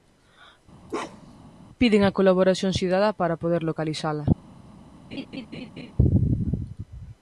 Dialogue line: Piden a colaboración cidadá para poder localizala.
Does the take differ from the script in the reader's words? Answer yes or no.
no